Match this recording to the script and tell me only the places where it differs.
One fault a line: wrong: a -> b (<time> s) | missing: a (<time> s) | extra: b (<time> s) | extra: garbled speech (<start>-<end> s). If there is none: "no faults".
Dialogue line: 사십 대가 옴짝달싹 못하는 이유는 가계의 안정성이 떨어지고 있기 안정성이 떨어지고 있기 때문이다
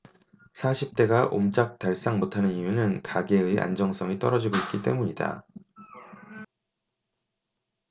missing: 안정성이 떨어지고 있기 (4.8 s)